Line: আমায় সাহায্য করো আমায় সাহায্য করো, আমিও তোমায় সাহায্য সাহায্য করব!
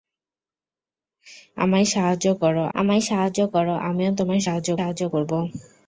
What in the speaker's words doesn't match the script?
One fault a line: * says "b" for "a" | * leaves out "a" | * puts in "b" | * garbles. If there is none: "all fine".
all fine